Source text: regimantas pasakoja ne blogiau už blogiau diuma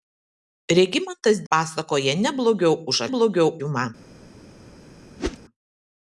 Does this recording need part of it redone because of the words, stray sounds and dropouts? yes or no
yes